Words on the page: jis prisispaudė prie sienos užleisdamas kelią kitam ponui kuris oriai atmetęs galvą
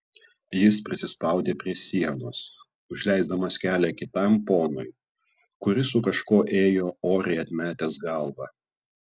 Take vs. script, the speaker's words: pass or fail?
fail